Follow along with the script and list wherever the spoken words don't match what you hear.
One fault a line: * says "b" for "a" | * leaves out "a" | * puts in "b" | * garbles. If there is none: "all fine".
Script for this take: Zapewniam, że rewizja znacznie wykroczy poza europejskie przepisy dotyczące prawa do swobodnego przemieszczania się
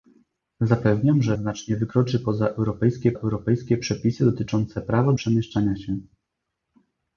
* leaves out "rewizja"
* puts in "europejskie"
* leaves out "do swobodnego"